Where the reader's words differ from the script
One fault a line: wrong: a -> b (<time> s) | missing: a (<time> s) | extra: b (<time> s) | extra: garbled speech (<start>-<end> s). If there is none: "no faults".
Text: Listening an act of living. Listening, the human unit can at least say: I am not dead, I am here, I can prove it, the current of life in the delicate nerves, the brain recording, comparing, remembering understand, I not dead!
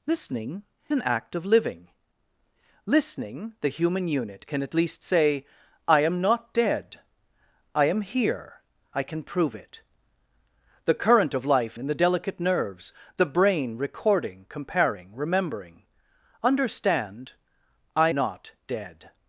no faults